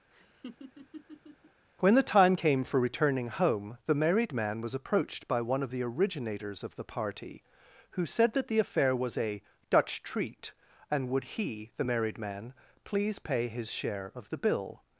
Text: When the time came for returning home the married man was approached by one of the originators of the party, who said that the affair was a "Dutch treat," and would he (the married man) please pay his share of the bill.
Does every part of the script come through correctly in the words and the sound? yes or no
no